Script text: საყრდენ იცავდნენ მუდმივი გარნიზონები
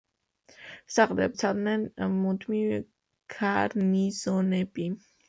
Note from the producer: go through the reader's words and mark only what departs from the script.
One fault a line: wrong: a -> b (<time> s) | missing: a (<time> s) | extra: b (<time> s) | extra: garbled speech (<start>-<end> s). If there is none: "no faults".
no faults